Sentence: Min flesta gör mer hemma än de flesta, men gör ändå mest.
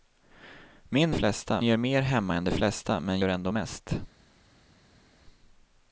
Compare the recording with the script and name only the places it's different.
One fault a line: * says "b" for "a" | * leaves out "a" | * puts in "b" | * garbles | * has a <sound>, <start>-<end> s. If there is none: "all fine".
all fine